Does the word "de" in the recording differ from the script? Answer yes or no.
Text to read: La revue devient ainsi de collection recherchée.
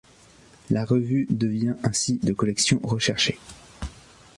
no